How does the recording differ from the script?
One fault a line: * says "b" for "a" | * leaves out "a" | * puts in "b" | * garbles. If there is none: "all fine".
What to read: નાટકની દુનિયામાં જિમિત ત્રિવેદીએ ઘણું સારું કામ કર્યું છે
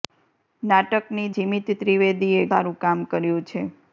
* leaves out "દુનિયામાં"
* leaves out "ઘણું"